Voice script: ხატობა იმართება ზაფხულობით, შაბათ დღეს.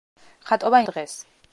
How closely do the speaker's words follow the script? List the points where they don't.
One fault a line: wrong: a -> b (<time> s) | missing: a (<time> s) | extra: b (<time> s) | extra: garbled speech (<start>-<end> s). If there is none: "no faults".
missing: იმართება ზაფხულობით შაბათ (0.8 s)